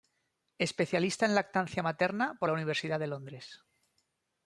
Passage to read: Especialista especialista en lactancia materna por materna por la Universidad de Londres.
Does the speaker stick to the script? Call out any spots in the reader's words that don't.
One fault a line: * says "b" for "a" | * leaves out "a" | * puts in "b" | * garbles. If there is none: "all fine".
* leaves out "especialista"
* leaves out "materna por"